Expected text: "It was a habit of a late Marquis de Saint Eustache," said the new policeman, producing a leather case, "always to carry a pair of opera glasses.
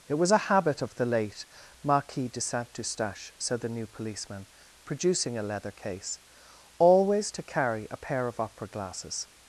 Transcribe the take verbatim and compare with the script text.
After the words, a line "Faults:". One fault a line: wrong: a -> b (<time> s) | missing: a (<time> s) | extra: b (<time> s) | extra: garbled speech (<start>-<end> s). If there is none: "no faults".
"It was a habit of the late Marquis de Saint Eustache," said the new policeman, producing a leather case, "always to carry a pair of opera glasses.
Faults:
wrong: a -> the (0.9 s)